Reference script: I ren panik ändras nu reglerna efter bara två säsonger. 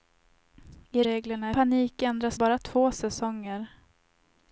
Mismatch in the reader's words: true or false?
true